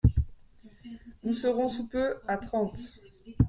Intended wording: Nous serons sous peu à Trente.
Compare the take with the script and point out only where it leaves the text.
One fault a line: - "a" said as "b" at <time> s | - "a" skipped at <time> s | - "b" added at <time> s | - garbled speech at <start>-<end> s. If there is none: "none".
none